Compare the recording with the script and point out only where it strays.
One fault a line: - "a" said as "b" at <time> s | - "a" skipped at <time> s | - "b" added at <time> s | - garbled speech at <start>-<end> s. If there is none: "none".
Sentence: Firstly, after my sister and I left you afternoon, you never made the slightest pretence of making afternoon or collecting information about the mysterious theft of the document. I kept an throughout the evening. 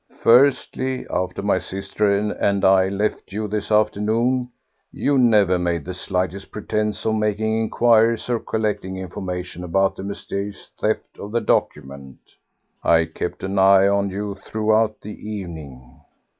- "this" added at 3.5 s
- "afternoon" said as "inquiries" at 7.6 s
- "eye on you" added at 13.6 s